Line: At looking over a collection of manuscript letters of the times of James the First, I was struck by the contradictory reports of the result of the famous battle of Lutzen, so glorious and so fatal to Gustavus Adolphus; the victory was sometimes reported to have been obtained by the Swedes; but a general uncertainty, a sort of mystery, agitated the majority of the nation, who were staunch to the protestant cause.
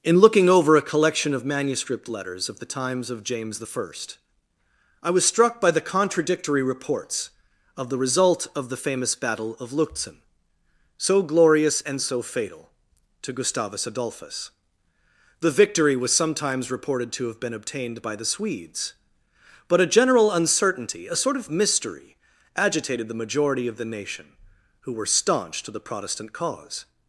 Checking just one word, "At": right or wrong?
wrong